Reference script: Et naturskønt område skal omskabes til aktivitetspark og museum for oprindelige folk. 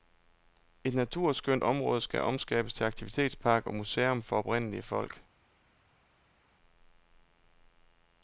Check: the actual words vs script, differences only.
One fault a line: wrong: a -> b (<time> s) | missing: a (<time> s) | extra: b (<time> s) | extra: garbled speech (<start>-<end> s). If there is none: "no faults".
no faults